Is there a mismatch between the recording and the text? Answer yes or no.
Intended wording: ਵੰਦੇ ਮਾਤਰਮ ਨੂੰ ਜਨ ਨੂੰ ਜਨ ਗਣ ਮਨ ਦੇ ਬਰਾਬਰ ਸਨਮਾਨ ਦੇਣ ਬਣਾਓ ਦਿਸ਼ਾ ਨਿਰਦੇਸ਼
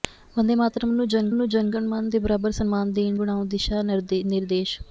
no